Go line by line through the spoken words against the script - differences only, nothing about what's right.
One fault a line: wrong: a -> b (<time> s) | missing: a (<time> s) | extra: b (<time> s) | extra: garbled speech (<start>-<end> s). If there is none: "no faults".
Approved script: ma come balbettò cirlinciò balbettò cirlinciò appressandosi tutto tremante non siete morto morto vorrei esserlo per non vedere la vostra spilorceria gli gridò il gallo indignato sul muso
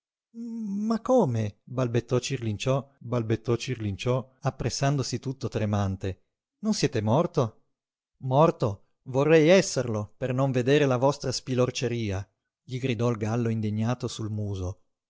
no faults